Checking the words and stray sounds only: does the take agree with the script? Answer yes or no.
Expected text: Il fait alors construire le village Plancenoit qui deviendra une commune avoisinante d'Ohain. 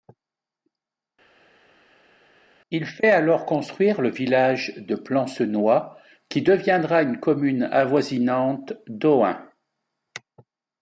no